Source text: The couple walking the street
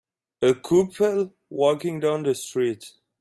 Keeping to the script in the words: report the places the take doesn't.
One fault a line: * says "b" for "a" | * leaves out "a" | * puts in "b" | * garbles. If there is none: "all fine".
* says "A" for "The"
* puts in "down"